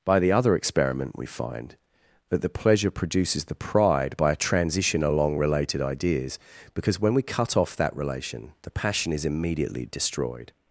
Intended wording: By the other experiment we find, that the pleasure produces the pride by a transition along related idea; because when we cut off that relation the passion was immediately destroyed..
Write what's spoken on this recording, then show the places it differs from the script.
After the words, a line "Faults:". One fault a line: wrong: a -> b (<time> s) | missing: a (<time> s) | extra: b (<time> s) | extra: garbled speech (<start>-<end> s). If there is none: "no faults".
By the other experiment we find, that the pleasure produces the pride by a transition along related ideas; because when we cut off that relation the passion is immediately destroyed..
Faults:
wrong: idea -> ideas (5.8 s)
wrong: was -> is (9.1 s)